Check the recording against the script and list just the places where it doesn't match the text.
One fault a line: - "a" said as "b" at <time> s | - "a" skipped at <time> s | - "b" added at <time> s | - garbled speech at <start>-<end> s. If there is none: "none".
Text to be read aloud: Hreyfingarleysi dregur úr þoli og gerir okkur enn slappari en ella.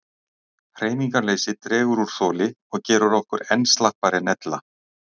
none